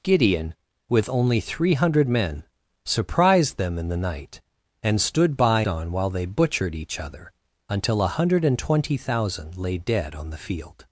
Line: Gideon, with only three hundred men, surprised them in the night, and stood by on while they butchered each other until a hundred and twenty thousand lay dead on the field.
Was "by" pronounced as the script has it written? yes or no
yes